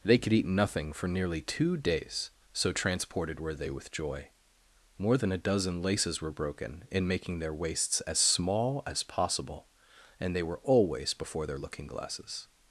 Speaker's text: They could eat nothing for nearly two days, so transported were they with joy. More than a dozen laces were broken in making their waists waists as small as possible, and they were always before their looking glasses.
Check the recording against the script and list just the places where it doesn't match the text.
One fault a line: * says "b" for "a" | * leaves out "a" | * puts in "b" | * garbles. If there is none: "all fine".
* leaves out "waists"